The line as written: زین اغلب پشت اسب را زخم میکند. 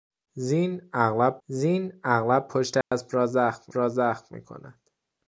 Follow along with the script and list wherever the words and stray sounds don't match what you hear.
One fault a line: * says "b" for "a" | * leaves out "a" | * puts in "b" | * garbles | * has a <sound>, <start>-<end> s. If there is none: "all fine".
* puts in "زین اغلب"
* has a dropout, 2.8-2.9 s
* puts in "را زخم"